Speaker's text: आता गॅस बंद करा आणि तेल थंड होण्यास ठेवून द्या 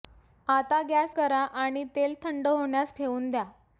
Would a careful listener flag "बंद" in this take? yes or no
yes